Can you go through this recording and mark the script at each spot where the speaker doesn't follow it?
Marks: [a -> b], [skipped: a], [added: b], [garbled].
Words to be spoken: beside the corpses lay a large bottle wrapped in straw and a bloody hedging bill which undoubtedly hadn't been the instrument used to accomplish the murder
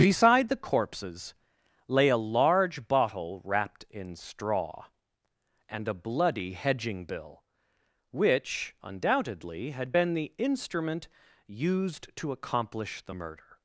beside the corpses lay a large bottle wrapped in straw and a bloody hedging bill which undoubtedly [hadn't -> had] been the instrument used to accomplish the murder